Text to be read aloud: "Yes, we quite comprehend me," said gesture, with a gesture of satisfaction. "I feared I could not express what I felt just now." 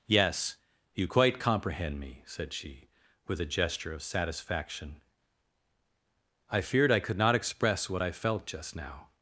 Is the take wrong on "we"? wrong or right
wrong